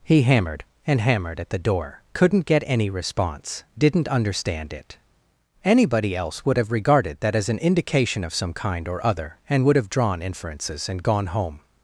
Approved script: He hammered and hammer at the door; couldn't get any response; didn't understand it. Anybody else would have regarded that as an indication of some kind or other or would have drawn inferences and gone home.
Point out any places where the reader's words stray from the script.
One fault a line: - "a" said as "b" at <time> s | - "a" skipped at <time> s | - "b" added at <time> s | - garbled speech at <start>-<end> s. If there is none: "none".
- "hammer" said as "hammered" at 1.0 s
- "or" said as "and" at 9.5 s